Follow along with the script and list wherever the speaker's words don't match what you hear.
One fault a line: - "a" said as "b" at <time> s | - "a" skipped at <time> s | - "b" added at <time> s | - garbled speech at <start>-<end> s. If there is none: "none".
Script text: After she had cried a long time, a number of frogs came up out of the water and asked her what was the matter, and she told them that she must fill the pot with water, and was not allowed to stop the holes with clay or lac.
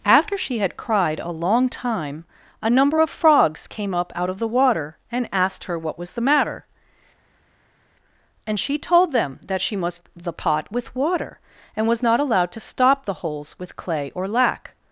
- "fill" skipped at 10.0 s